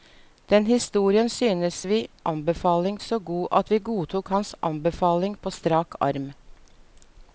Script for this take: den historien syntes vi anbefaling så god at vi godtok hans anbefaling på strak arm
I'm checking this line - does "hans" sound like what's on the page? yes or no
yes